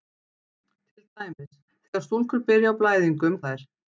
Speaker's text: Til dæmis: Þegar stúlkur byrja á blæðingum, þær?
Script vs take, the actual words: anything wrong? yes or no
no